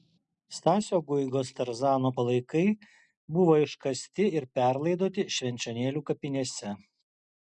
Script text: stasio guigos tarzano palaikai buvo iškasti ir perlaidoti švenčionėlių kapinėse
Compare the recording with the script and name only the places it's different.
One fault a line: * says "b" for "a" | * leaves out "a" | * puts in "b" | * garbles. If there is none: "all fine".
all fine